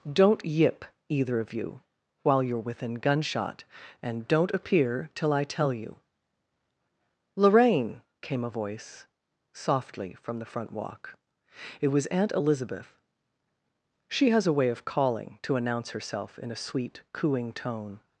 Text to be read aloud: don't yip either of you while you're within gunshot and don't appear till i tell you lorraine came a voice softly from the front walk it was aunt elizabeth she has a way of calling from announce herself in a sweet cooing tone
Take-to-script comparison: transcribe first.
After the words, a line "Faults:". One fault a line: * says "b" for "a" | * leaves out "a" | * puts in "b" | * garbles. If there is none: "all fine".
don't yip either of you while you're within gunshot and don't appear till i tell you lorraine came a voice softly from the front walk it was aunt elizabeth she has a way of calling to announce herself in a sweet cooing tone
Faults:
* says "to" for "from"